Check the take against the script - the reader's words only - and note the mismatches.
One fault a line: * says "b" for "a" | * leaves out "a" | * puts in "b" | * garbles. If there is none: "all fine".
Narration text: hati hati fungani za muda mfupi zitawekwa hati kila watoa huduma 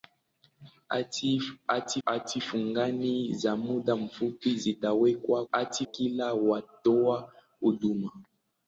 all fine